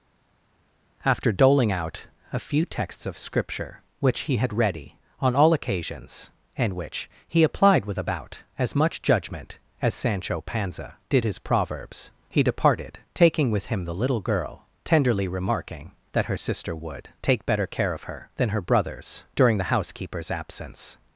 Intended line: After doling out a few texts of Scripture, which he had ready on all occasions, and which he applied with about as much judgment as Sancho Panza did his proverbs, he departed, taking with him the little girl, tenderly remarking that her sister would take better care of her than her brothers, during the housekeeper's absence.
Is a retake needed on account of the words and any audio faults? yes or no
no